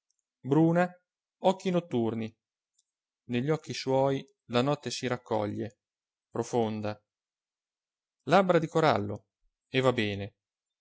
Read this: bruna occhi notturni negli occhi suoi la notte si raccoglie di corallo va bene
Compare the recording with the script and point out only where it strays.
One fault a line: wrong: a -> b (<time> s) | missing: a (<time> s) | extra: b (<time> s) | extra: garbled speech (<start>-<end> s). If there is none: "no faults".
extra: profonda labbra (6.3 s)
extra: e (9.7 s)